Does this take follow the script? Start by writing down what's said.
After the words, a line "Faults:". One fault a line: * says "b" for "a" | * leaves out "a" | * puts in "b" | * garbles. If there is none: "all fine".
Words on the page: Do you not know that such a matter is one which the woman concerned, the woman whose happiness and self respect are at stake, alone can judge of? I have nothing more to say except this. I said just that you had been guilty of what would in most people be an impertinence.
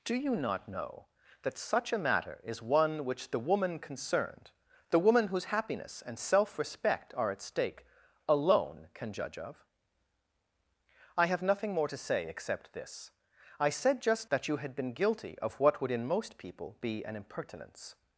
Do you not know that such a matter is one which the woman concerned, the woman whose happiness and self respect are at stake, alone can judge of? I have nothing more to say except this. I said just that you had been guilty of what would in most people be an impertinence.
Faults:
all fine